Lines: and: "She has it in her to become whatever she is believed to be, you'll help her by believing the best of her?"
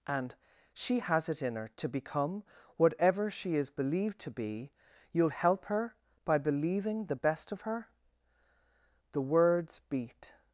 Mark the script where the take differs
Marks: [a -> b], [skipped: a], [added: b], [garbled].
and: "She has it in her to become whatever she is believed to be, you'll help her by believing the best of her?" [added: The words beat]